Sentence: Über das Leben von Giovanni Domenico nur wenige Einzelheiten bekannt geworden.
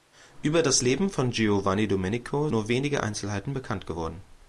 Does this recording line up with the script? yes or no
yes